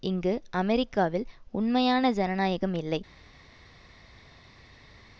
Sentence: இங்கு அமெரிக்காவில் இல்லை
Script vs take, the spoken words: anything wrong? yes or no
yes